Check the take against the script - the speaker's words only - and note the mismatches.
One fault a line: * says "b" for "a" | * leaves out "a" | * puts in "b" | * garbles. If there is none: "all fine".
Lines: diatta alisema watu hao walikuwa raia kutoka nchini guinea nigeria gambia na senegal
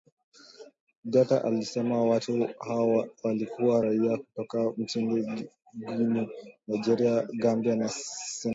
all fine